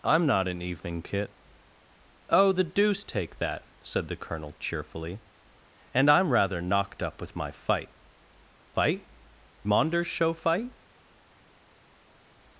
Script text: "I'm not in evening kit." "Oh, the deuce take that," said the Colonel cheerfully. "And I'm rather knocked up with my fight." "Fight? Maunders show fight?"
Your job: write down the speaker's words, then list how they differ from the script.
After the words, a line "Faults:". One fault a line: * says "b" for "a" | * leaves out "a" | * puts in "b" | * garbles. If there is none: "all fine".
"I'm not in evening kit." "Oh, the deuce take that," said the Colonel cheerfully. "And I'm rather knocked up with my fight." "Fight? Maunders show fight?"
Faults:
all fine